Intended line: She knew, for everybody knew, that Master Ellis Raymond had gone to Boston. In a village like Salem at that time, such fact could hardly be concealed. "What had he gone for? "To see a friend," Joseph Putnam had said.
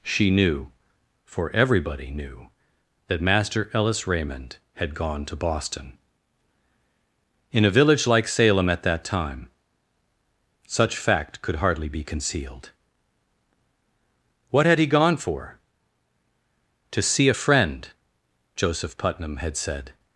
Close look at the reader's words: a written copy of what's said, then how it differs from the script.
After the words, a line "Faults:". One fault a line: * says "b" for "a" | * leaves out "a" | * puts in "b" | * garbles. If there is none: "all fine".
She knew, for everybody knew, that Master Ellis Raymond had gone to Boston. In a village like Salem at that time, such fact could hardly be concealed. "What had he gone for? "To see a friend," Joseph Putnam had said.
Faults:
all fine